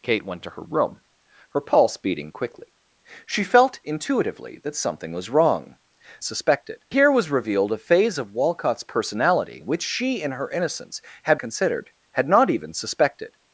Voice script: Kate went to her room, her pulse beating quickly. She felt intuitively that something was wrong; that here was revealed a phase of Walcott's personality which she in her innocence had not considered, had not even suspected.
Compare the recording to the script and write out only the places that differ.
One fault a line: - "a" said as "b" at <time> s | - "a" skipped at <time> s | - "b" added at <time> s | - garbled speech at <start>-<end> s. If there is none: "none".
- "that" said as "suspected" at 6.2 s
- "not" skipped at 11.4 s